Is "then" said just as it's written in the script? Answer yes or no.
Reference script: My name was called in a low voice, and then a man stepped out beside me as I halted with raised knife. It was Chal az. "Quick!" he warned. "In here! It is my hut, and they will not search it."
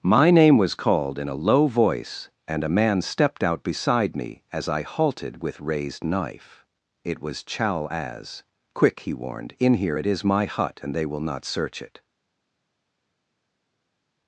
no